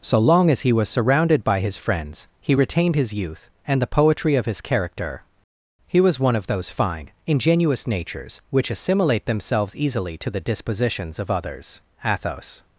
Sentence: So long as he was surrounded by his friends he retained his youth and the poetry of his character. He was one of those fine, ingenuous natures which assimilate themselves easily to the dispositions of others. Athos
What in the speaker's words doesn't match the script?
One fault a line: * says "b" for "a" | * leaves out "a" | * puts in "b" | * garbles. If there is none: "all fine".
all fine